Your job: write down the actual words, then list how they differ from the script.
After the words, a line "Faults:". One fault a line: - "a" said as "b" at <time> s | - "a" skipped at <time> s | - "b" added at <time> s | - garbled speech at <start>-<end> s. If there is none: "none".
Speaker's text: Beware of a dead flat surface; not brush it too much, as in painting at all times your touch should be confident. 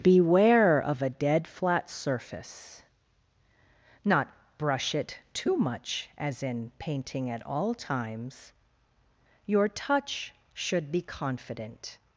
Beware of a dead flat surface; not brush it too much, as in painting at all times your touch should be confident.
Faults:
none